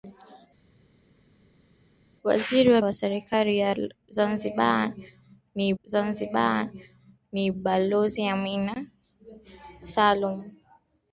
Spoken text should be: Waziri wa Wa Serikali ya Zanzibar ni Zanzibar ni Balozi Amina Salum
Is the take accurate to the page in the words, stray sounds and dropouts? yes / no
yes